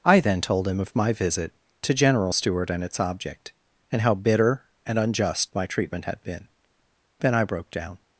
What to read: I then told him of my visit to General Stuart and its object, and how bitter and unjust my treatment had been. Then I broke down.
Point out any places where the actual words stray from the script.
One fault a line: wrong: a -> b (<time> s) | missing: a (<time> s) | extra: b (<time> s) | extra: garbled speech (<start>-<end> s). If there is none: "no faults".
no faults